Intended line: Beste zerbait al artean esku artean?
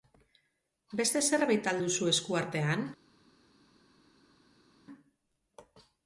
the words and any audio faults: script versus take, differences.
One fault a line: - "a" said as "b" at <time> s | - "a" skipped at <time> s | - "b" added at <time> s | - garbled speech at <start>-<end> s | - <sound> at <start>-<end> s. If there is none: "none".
- "artean" said as "duzu" at 1.8 s